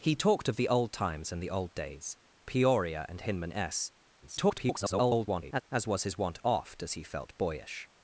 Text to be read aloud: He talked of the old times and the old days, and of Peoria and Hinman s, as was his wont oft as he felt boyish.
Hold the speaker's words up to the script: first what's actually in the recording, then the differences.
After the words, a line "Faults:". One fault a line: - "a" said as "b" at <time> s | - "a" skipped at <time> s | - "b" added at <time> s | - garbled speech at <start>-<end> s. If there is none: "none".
He talked of the old times and the old days, Peoria and Hinman s, [garbled] as was his wont oft as he felt boyish.
Faults:
- "and of" skipped at 2.2 s
- garbled speech at 4.2-5.6 s